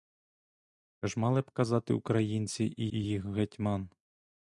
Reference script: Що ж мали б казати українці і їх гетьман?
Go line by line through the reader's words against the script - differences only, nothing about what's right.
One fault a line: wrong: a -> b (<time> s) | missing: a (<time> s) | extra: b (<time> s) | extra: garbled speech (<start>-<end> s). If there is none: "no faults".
extra: і (2.9 s)